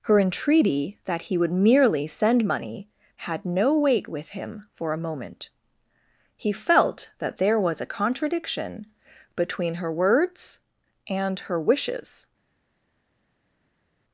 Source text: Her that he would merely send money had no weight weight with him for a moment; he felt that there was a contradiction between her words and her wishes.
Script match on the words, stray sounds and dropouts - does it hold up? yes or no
no